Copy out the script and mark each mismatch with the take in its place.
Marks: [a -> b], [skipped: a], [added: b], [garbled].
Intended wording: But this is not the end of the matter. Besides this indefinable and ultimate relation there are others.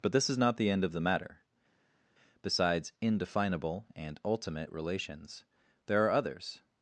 But this is not the end of the matter. Besides [skipped: this] indefinable and ultimate [relation -> relations] there are others.